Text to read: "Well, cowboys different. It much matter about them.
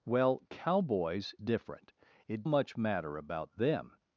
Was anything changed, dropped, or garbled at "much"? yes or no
no